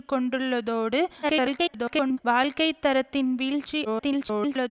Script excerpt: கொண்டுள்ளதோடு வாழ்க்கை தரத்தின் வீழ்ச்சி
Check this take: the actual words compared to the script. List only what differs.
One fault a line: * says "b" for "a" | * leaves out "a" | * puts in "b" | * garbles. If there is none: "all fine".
* garbles
* garbles